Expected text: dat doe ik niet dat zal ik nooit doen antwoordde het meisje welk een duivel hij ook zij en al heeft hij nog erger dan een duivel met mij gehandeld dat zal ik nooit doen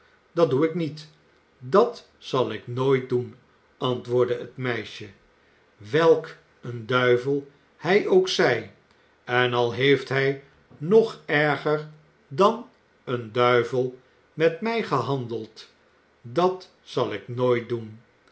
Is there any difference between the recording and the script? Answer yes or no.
no